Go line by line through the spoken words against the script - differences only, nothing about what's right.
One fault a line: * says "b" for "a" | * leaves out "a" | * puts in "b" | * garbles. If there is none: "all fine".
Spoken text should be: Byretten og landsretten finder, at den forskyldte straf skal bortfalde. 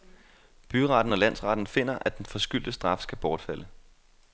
all fine